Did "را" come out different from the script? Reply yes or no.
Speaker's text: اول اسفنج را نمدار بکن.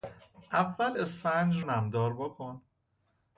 yes